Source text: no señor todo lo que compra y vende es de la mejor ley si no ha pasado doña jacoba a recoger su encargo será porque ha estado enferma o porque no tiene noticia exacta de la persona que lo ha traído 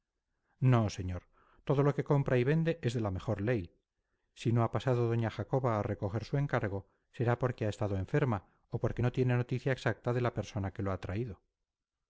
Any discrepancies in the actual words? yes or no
no